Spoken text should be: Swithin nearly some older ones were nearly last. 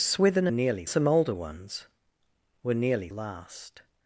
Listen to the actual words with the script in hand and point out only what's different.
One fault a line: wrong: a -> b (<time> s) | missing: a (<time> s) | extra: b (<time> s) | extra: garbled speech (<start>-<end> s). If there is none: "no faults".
no faults